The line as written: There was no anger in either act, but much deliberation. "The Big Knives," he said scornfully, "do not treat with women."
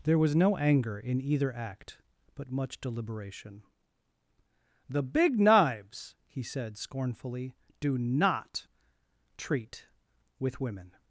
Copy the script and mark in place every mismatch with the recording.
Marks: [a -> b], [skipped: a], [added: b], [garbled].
There was no anger in either act, but much deliberation. "The Big Knives," he said scornfully, "do not treat with women."